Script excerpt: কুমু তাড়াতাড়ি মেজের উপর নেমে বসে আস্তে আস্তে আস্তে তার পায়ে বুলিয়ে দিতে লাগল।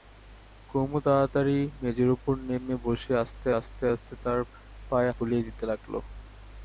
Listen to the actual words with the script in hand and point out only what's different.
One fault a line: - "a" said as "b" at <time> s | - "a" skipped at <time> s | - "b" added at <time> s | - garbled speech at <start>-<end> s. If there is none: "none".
none